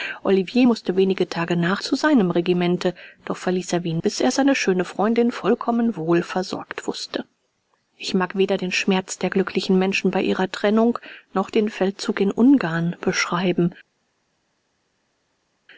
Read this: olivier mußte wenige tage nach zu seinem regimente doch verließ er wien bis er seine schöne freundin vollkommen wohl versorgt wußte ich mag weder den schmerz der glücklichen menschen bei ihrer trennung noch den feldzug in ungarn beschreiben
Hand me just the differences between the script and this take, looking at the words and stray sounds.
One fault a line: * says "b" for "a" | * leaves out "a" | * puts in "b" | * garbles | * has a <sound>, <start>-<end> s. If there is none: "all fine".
all fine